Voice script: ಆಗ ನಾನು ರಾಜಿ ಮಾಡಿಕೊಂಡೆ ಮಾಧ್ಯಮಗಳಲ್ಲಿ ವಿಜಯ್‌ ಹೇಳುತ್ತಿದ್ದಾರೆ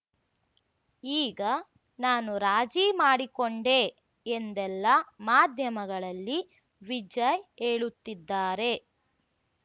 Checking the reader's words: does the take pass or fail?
fail